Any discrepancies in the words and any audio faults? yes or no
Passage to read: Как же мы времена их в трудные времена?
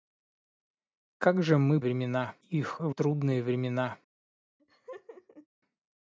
yes